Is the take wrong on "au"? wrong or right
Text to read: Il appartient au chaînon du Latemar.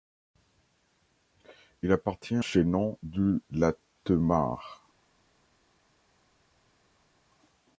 wrong